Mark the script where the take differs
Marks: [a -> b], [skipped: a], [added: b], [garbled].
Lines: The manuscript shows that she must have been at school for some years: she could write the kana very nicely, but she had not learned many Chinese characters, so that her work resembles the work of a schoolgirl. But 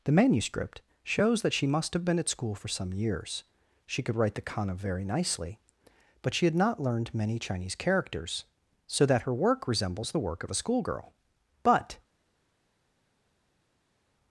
The manuscript shows that she must have been at school for some years: she could write the kana very nicely, but she had not learned many Chinese characters, so that her work resembles the work of a schoolgirl. But